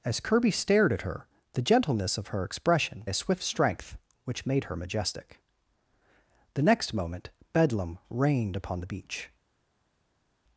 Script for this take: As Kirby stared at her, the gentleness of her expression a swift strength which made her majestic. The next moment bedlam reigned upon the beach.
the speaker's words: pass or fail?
pass